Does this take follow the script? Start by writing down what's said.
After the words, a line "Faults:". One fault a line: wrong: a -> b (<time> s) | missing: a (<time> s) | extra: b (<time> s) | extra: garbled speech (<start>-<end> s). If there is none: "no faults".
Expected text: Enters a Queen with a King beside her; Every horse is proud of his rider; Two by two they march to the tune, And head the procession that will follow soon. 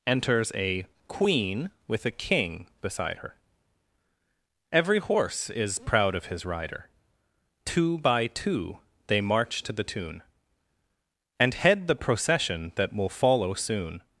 Enters a Queen with a King beside her; Every horse is proud of his rider; Two by two they march to the tune, And head the procession that will follow soon.
Faults:
no faults